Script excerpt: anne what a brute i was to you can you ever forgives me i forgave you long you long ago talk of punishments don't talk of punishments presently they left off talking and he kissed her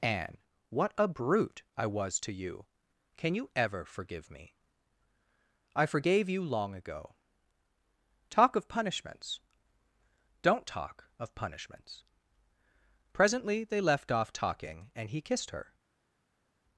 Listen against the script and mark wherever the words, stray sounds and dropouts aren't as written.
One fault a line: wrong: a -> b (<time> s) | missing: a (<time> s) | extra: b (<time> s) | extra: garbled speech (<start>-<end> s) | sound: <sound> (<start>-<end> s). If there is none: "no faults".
wrong: forgives -> forgive (3.9 s)
missing: you long (6.7 s)